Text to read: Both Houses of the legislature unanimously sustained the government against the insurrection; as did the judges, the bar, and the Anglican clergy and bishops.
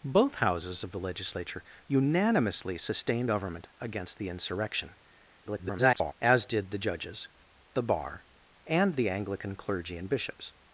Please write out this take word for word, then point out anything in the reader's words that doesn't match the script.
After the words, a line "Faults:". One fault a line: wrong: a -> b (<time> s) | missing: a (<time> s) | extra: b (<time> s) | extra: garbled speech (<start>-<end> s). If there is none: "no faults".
Both Houses of the legislature unanimously sustained government against the insurrection; [garbled] as did the judges, the bar, and the Anglican clergy and bishops.
Faults:
missing: the (3.3 s)
extra: garbled speech (5.5-6.1 s)